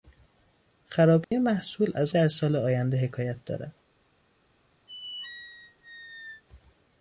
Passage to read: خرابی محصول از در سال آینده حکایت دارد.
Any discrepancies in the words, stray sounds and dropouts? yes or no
yes